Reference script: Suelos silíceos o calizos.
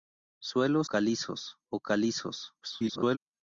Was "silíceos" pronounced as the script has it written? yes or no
no